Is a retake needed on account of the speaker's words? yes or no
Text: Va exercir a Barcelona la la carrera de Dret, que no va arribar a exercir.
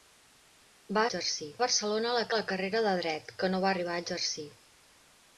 no